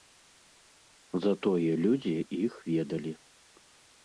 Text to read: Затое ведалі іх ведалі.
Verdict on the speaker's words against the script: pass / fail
fail